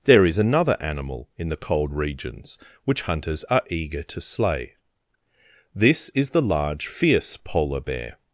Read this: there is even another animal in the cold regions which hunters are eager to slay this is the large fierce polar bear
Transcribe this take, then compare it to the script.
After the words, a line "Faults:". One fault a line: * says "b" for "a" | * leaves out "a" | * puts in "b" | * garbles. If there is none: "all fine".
there is another animal in the cold regions which hunters are eager to slay this is the large fierce polar bear
Faults:
* leaves out "even"